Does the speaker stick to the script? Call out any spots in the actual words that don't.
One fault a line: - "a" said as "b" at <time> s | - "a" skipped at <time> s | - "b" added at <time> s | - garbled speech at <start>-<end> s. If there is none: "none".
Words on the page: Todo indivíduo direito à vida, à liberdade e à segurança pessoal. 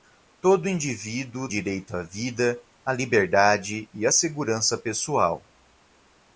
none